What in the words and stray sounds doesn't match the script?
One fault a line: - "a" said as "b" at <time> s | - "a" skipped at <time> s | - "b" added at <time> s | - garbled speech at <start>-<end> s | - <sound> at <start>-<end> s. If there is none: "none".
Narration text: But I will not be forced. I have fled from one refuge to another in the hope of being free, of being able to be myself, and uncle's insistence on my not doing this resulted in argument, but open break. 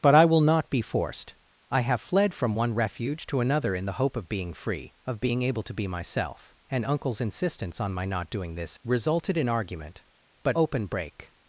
none